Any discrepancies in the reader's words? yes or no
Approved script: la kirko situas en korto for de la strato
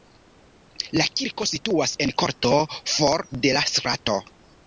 no